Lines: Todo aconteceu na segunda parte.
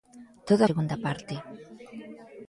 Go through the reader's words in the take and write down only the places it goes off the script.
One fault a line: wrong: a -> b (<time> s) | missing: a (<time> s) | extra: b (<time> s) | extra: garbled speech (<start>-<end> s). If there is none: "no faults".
missing: aconteceu na (0.6 s)